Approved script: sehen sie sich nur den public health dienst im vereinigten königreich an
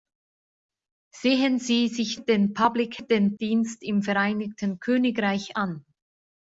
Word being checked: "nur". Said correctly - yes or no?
no